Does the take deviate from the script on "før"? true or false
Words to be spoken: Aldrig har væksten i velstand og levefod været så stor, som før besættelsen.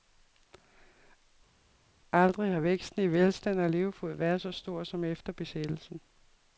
true